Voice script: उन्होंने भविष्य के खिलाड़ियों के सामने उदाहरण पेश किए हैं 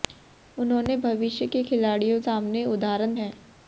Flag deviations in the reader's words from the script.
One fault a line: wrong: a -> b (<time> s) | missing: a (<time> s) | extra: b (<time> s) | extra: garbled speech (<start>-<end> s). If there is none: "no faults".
missing: के (2.2 s)
missing: पेश किए (3.2 s)